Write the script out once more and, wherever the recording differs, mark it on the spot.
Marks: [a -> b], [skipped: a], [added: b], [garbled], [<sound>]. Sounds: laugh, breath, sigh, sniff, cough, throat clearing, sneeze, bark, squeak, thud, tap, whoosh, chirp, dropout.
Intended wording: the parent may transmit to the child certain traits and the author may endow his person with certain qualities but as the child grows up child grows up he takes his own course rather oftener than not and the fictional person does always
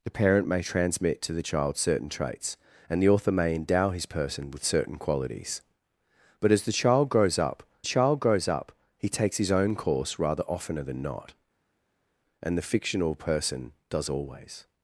the parent may transmit to the child certain traits and the author may endow his person with certain qualities but as the child grows up child grows up he takes his own course rather oftener than not and the fictional person does always